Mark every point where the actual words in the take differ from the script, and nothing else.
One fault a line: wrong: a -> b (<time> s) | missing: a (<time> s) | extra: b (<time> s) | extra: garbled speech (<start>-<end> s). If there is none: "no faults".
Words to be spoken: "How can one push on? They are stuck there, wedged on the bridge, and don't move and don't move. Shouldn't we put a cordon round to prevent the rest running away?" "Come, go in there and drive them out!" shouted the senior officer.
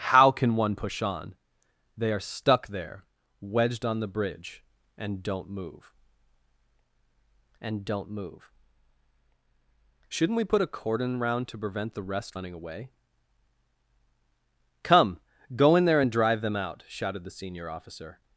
no faults